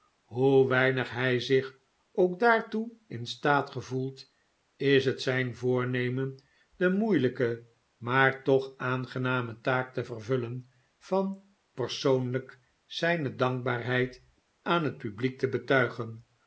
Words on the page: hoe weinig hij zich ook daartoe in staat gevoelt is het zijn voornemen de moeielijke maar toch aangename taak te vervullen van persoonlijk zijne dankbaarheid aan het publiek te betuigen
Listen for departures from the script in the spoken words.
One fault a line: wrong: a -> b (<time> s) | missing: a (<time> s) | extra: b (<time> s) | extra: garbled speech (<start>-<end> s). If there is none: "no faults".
no faults